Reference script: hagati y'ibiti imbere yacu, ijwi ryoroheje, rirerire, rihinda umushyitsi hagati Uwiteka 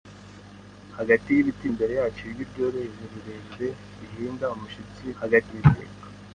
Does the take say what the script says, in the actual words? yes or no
yes